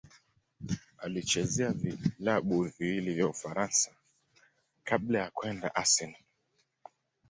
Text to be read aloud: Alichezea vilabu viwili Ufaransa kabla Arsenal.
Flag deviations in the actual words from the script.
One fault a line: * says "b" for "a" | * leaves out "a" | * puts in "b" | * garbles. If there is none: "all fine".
* puts in "vya"
* puts in "ya kwenda"